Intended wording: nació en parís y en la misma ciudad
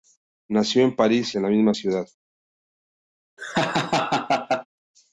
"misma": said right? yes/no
yes